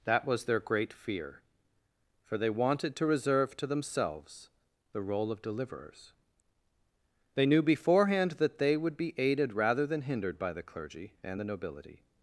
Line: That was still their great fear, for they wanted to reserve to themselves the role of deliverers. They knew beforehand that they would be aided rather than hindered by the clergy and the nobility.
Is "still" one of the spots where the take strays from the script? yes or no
yes